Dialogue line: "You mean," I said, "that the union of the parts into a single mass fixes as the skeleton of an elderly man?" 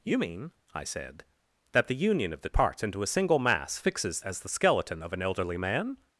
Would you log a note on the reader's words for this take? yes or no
no